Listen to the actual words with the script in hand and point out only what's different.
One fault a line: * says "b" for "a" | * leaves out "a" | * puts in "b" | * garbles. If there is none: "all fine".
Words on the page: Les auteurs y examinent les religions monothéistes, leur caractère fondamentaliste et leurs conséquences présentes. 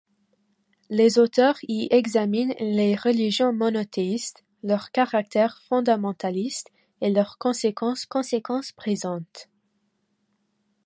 * puts in "conséquences"